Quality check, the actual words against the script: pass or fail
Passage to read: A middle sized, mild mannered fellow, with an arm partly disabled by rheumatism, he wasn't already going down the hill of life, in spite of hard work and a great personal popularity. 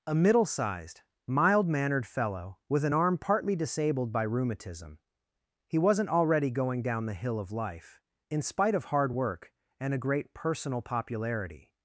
pass